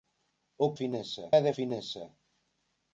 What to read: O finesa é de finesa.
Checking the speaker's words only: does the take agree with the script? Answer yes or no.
yes